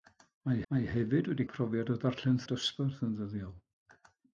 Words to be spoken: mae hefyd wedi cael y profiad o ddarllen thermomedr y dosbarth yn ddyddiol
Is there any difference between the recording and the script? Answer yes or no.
yes